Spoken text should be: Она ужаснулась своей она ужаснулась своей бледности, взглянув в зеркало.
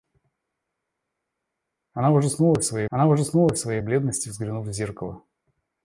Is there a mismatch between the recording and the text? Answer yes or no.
no